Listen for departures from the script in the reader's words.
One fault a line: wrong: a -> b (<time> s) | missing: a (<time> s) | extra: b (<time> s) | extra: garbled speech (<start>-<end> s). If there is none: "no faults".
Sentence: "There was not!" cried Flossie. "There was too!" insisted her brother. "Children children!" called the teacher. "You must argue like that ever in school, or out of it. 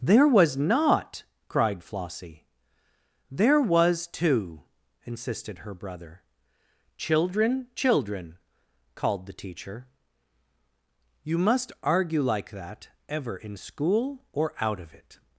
no faults